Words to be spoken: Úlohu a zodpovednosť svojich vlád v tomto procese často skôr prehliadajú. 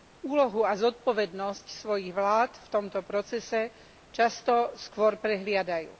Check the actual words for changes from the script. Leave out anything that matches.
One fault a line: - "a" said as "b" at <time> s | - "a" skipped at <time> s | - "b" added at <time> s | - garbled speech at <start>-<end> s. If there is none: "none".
none